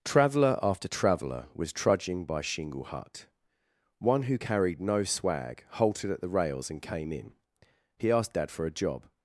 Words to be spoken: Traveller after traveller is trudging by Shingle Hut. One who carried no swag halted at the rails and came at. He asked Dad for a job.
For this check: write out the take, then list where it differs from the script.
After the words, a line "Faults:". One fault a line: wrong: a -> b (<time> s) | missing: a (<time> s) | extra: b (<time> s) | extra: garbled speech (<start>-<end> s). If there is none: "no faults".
Traveller after traveller was trudging by Shingle Hut. One who carried no swag halted at the rails and came in. He asked Dad for a job.
Faults:
wrong: is -> was (1.5 s)
wrong: at -> in (7.1 s)